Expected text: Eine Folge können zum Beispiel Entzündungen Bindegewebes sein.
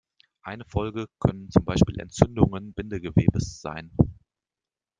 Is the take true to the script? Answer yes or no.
yes